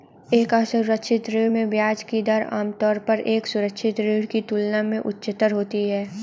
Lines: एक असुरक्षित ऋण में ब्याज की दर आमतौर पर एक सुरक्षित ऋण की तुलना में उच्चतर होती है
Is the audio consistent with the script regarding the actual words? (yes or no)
yes